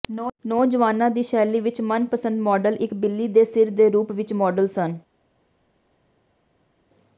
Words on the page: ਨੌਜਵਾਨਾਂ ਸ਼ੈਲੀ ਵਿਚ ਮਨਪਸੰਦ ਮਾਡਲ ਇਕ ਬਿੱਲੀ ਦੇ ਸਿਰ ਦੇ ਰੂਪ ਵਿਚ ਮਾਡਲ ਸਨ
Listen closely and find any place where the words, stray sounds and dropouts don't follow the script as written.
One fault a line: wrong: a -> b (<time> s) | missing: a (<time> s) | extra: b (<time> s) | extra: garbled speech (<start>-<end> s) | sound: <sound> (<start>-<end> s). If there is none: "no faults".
extra: ਦੀ (1.1 s)